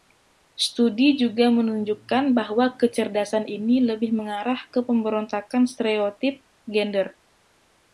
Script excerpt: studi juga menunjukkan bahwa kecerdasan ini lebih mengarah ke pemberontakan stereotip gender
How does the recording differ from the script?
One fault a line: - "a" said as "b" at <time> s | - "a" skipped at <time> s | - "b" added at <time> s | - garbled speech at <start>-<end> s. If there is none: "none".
none